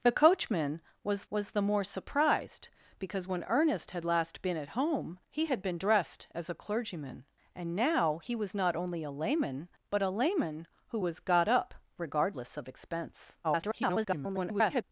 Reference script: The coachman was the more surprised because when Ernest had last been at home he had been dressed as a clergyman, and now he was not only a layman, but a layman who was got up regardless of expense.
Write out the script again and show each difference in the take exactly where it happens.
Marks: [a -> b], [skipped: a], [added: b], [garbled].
The coachman was [added: was] the more surprised because when Ernest had last been at home he had been dressed as a clergyman, and now he was not only a layman, but a layman who was got up regardless of expense. [garbled]